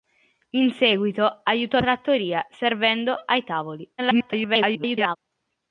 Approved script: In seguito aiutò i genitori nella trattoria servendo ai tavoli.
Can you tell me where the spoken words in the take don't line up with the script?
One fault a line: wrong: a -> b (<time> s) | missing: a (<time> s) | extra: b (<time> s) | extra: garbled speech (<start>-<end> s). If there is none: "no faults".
missing: i genitori nella (1.8 s)
extra: garbled speech (4.0-5.2 s)